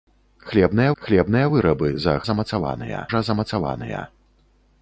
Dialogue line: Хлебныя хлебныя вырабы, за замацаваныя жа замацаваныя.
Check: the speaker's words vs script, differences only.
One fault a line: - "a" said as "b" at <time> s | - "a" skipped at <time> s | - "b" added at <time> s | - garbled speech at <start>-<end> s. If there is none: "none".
none